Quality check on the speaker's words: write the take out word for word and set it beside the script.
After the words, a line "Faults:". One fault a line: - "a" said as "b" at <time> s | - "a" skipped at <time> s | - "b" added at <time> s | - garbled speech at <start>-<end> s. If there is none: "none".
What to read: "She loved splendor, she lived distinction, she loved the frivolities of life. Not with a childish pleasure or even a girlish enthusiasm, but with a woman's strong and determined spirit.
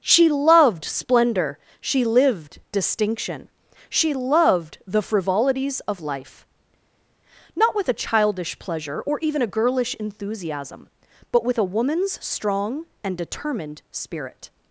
"She loved splendor, she lived distinction, she loved the frivolities of life. Not with a childish pleasure or even a girlish enthusiasm, but with a woman's strong and determined spirit.
Faults:
none